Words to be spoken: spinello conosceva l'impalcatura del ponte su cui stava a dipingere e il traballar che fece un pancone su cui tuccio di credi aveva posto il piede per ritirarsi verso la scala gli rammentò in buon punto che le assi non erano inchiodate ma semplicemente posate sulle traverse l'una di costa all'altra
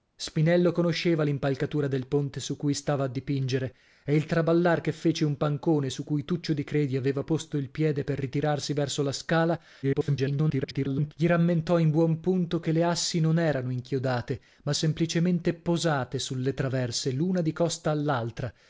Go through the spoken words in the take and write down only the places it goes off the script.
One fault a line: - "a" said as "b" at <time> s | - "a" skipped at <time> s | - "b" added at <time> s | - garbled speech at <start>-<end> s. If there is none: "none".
- garbled speech at 9.8-11.1 s